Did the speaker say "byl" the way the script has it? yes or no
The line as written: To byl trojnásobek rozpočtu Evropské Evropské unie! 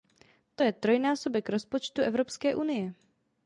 no